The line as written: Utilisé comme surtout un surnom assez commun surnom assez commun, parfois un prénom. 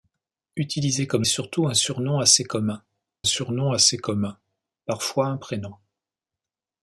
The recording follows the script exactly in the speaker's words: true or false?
true